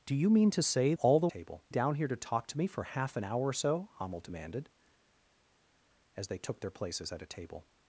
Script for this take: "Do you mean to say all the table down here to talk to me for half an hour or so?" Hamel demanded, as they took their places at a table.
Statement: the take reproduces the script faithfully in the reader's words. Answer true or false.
true